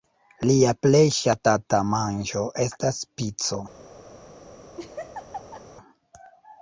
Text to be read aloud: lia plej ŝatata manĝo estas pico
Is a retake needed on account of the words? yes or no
no